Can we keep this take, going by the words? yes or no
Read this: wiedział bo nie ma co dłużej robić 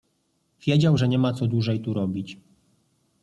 no